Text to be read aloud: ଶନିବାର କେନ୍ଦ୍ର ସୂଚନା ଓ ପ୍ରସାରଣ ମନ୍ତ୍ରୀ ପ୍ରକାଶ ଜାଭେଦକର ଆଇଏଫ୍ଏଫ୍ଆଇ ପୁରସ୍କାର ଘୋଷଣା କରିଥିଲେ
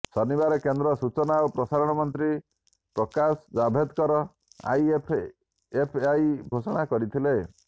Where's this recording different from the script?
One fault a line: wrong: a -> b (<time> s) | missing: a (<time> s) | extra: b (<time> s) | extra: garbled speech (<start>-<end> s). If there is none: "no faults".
missing: ପୁରସ୍କାର (6.3 s)